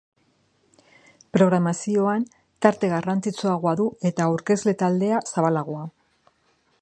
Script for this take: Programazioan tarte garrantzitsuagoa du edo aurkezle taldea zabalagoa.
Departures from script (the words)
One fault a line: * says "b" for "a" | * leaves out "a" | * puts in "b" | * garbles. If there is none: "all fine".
* says "eta" for "edo"